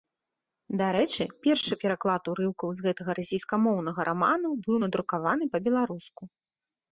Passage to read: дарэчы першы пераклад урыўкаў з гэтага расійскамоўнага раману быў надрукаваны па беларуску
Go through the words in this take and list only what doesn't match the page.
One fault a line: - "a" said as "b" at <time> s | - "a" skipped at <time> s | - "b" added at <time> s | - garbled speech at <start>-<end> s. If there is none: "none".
none